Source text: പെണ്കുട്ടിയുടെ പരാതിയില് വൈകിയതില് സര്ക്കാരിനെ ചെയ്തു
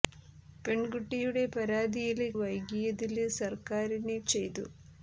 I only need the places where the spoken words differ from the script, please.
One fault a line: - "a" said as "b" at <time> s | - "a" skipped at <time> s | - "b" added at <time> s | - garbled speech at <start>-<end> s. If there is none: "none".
none